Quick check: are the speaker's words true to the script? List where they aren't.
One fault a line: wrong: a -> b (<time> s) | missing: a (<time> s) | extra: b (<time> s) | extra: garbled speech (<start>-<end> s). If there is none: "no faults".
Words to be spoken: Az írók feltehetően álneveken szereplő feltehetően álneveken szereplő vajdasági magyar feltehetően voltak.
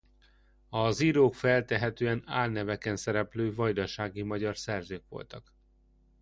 missing: feltehetően álneveken szereplő (3.5 s)
wrong: feltehetően -> szerzők (4.6 s)